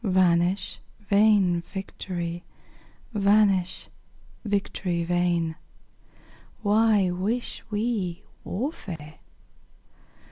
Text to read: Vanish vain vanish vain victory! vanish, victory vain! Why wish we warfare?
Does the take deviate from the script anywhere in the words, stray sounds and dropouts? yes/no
yes